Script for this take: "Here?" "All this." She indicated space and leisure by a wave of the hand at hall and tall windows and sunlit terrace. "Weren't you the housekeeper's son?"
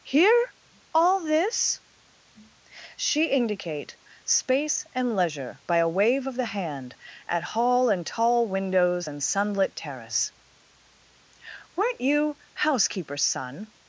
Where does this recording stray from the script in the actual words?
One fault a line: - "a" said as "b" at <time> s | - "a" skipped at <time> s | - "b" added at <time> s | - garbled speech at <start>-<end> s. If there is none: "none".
- "indicated" said as "indicate" at 3.2 s
- "the" skipped at 12.4 s